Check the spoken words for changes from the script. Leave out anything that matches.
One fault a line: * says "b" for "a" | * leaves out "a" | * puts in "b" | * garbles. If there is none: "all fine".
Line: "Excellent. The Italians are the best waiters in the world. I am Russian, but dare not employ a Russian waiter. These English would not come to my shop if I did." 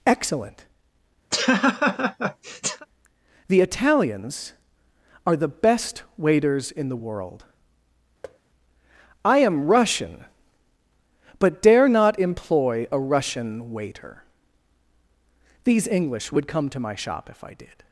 * leaves out "not"